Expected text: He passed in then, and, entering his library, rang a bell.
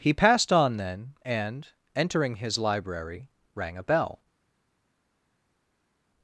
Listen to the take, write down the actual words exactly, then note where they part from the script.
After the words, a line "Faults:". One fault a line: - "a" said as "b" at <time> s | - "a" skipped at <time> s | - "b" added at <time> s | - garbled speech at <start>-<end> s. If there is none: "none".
He passed on then, and, entering his library, rang a bell.
Faults:
- "in" said as "on" at 0.5 s